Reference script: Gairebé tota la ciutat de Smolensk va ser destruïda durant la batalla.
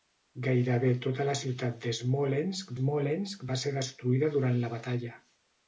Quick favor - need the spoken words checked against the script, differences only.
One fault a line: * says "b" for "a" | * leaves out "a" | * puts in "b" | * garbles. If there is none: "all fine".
* puts in "Smolensk"